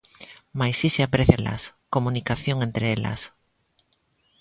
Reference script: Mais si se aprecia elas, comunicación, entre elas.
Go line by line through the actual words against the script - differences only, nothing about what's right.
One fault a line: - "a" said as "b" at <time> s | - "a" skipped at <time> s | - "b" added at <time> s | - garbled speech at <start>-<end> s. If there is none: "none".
none